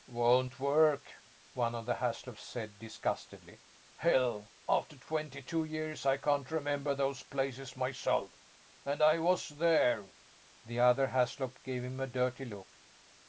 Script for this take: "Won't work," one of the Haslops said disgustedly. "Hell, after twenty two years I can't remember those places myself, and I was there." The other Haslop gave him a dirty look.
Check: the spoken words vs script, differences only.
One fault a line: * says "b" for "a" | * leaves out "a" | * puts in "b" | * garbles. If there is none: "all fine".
all fine